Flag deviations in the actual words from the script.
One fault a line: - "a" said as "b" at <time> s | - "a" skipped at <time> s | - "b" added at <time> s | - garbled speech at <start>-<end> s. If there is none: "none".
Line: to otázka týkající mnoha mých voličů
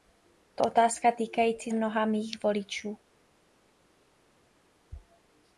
none